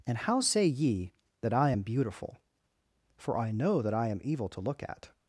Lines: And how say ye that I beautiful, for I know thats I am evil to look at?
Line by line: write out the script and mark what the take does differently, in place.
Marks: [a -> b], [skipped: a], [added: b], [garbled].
And how say ye that I [added: am] beautiful, for I know [thats -> that] I am evil to look at?